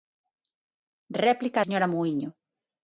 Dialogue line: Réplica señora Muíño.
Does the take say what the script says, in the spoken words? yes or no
yes